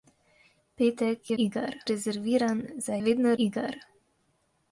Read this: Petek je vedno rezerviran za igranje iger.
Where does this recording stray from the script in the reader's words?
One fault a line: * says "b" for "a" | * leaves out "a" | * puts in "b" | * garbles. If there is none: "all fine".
* says "iger" for "vedno"
* says "vedno" for "igranje"